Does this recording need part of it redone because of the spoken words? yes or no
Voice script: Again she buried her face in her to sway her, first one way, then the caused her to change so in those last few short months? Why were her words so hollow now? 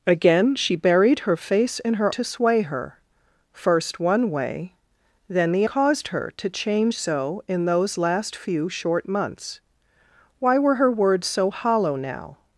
no